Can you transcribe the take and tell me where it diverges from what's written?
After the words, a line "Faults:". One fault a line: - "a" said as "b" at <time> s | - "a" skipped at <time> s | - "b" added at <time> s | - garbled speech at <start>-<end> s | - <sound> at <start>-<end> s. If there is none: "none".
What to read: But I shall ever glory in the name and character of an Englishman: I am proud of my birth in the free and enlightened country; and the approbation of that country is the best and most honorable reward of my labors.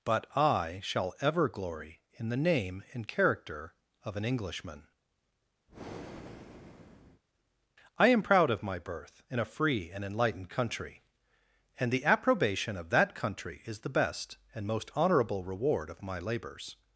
But I shall ever glory in the name and character of an Englishman: I am proud of my birth in a free and enlightened country; and the approbation of that country is the best and most honorable reward of my labors.
Faults:
- breath at 5.7-7.2 s
- "the" said as "a" at 9.4 s